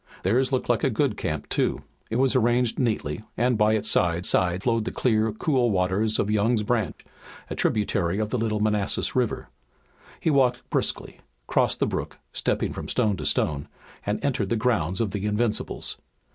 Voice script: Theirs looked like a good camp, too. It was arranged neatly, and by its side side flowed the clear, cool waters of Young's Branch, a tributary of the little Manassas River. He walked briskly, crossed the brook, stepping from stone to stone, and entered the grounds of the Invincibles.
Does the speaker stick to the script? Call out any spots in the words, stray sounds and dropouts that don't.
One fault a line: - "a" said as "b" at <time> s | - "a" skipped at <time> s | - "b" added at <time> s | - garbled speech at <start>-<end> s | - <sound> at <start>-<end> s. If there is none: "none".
- dropout at 6.9-7.0 s